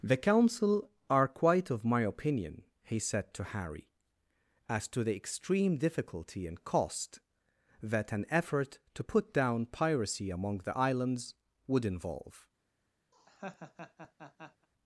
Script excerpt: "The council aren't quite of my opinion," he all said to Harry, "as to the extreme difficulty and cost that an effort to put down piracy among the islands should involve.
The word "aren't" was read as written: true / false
false